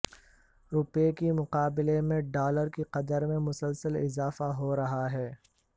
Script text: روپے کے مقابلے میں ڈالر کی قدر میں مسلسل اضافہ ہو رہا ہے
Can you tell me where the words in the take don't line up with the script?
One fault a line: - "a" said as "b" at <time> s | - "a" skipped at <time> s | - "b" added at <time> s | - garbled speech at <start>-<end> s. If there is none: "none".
none